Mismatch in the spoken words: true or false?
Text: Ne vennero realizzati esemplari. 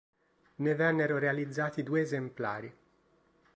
true